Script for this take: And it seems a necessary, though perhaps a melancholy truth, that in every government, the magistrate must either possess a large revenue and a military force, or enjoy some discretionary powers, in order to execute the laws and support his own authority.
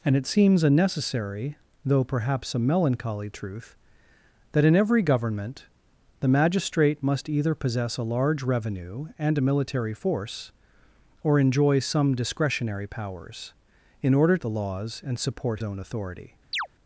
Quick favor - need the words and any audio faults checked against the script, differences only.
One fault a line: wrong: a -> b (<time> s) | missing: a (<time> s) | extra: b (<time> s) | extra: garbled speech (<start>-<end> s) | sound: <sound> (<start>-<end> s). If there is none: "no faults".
missing: to execute (14.4 s)
missing: his (15.6 s)
sound: chirp (16.5-16.7 s)